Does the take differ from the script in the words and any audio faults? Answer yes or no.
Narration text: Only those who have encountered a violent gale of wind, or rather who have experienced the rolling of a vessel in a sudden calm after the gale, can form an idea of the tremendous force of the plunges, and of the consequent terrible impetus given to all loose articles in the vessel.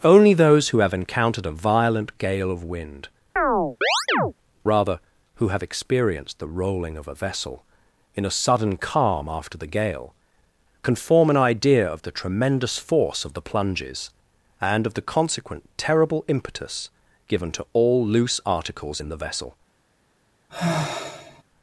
yes